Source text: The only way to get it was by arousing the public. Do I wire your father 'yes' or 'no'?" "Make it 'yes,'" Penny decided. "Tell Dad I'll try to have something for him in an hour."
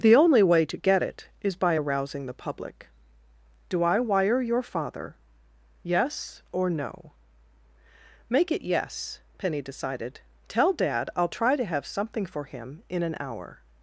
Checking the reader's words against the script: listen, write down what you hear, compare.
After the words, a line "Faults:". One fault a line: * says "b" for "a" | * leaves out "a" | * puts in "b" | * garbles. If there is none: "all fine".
The only way to get it is by arousing the public. Do I wire your father 'yes' or 'no'?" "Make it 'yes,'" Penny decided. "Tell Dad I'll try to have something for him in an hour."
Faults:
* says "is" for "was"